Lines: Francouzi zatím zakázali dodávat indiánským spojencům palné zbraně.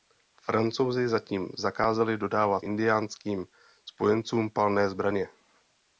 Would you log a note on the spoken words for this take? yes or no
no